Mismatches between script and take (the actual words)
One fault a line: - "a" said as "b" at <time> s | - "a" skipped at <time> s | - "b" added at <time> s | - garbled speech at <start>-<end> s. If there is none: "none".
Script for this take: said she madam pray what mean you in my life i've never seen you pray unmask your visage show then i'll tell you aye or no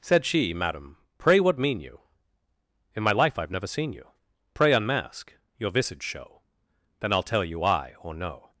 none